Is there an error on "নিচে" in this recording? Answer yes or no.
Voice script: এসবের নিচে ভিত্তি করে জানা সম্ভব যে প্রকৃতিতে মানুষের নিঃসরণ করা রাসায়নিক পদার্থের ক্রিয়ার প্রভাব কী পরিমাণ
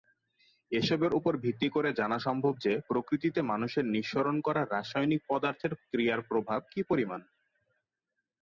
yes